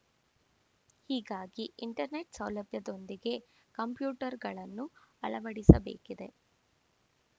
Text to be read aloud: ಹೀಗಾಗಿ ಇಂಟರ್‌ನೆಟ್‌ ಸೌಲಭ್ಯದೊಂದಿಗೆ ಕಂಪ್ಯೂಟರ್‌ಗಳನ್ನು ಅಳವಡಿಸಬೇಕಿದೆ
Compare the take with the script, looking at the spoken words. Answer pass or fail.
pass